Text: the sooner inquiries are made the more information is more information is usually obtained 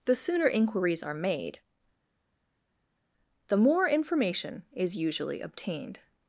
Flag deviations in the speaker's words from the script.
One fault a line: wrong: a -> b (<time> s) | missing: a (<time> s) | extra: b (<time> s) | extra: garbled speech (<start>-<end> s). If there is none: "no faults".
missing: more information is (5.0 s)